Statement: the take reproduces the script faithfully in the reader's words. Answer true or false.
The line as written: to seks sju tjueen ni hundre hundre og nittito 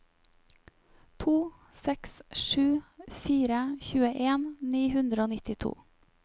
false